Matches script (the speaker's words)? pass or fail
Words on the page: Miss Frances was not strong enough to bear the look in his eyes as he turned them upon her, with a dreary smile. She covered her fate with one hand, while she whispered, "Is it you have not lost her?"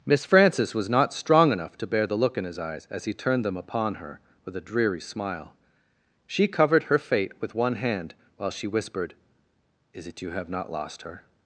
pass